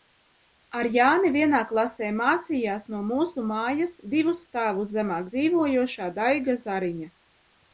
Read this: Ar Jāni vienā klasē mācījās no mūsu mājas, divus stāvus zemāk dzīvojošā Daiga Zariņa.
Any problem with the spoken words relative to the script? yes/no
no